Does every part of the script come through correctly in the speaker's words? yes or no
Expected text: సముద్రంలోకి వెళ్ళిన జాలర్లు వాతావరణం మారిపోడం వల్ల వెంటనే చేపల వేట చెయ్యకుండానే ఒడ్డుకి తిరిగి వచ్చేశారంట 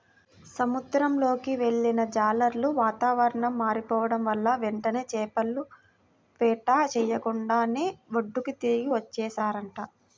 yes